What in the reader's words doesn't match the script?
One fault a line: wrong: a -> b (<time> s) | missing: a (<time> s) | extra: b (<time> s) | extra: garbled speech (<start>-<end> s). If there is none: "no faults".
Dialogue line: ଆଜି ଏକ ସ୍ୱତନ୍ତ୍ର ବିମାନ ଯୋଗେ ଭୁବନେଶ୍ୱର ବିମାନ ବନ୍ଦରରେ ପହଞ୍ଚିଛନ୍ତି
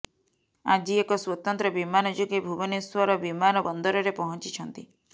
no faults